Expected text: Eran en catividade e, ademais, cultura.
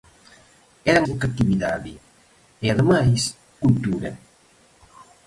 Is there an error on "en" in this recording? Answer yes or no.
no